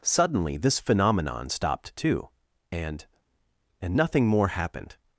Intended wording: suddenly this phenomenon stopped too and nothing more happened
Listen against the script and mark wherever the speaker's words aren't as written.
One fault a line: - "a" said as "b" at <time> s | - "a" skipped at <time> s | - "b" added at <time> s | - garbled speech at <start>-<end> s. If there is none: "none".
- "and" added at 3.8 s